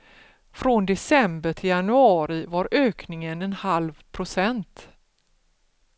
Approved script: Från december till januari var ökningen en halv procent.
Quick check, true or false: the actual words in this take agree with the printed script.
true